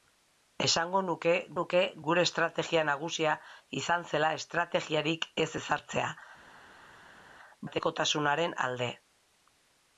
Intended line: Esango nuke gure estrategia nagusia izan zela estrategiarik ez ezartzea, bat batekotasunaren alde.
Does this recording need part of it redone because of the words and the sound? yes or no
yes